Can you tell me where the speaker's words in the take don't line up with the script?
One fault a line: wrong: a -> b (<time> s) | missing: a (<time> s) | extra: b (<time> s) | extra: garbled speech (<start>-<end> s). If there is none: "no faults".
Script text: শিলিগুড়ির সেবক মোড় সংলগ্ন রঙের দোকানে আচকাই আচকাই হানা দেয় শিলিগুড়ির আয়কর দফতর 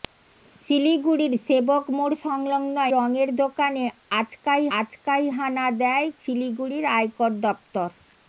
no faults